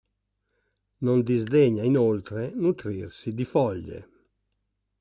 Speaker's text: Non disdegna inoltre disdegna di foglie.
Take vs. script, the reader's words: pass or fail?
fail